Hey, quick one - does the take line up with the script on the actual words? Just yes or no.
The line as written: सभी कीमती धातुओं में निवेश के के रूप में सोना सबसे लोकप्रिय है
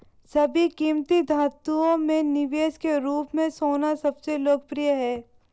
no